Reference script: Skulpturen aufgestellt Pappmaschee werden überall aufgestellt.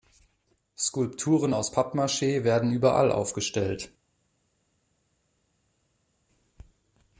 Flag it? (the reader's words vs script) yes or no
yes